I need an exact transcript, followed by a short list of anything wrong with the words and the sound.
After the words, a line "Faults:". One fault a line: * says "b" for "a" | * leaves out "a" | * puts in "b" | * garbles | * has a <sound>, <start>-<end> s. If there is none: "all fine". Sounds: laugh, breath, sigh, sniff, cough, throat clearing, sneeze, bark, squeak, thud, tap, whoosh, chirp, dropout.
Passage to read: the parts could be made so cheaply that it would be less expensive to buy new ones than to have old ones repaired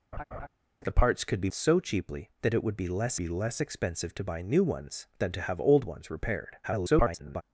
the parts could be so cheaply that it would be less be less expensive to buy new ones than to have old ones repaired [garbled]
Faults:
* has a laugh, 0.1-0.5 s
* leaves out "made"
* puts in "be less"
* garbles